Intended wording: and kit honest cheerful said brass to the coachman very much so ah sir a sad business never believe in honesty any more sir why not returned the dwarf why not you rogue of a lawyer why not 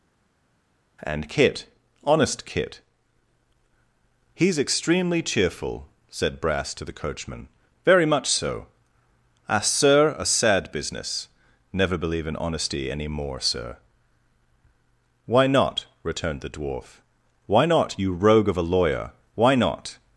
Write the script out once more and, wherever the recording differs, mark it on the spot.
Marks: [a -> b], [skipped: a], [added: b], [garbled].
and kit honest [added: kit he's extremely] cheerful said brass to the coachman very much so ah sir a sad business never believe in honesty any more sir why not returned the dwarf why not you rogue of a lawyer why not